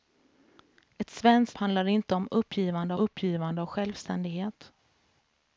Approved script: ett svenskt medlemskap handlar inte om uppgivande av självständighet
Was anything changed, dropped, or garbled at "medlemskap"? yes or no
yes